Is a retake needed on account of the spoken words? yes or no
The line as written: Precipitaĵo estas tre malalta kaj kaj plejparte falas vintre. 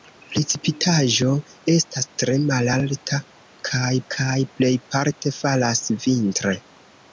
no